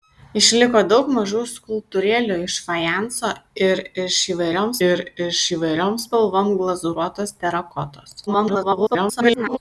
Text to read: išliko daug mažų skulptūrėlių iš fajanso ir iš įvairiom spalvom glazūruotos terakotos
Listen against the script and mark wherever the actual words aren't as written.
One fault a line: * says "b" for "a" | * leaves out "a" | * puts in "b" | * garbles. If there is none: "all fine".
* puts in "ir iš įvairiom"
* garbles